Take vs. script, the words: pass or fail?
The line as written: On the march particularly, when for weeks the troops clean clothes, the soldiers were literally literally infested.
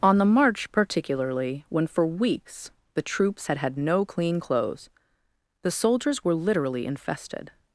fail